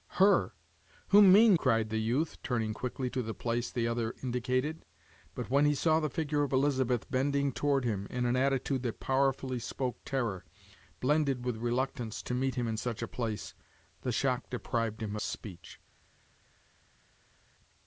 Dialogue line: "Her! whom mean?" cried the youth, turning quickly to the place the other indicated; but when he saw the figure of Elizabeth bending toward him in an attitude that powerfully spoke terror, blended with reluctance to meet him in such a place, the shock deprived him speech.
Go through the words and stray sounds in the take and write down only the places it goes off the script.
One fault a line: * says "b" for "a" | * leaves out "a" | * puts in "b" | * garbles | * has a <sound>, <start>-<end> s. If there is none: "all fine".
all fine